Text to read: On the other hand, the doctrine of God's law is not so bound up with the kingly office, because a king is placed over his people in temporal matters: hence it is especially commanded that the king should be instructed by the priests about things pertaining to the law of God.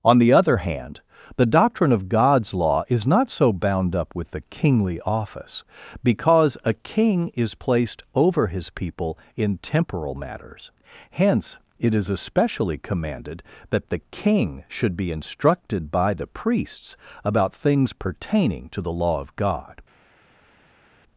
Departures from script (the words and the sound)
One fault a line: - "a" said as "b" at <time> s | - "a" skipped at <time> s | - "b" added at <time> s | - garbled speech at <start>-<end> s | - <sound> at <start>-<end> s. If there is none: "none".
none